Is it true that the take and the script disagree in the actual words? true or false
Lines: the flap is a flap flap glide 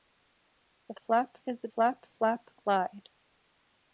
false